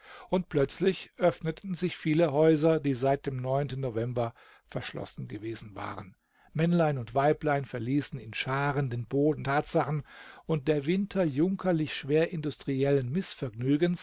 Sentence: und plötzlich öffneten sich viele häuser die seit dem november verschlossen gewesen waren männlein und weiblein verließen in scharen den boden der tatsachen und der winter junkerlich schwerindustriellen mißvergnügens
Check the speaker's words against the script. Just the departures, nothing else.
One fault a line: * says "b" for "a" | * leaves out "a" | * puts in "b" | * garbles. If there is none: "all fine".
* leaves out "der"